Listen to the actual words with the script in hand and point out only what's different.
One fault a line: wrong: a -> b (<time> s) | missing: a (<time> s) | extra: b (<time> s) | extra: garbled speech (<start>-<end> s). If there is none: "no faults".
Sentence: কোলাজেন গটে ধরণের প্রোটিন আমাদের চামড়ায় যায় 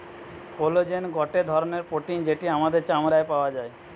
extra: যেটি (2.2 s)
extra: পাওয়া (3.3 s)